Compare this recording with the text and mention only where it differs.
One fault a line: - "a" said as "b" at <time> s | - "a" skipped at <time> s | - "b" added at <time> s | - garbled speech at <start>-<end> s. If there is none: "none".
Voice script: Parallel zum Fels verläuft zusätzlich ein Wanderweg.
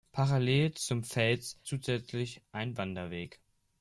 - "verläuft" skipped at 1.6 s